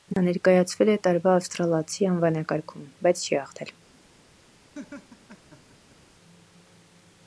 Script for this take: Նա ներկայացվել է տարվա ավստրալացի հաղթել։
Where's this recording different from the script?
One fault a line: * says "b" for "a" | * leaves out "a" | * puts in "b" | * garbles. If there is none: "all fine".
* puts in "անվանակարգում բայց չի"